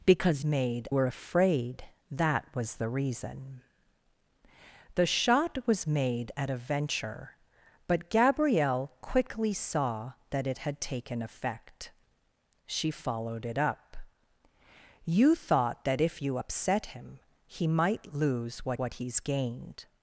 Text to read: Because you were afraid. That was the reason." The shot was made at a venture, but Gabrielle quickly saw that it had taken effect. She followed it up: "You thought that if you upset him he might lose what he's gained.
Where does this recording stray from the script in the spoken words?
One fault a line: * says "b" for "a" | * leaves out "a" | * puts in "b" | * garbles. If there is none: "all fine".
* says "made" for "you"
* puts in "what"